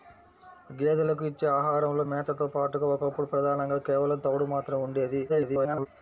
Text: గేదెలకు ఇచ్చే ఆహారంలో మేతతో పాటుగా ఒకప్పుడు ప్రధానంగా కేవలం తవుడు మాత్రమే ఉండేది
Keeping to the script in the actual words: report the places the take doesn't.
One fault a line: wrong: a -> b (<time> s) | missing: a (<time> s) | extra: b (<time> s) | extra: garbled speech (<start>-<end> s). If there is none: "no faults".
extra: garbled speech (5.3-5.9 s)